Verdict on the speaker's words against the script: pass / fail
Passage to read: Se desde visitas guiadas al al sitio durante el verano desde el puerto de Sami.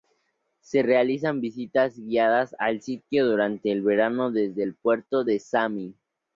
fail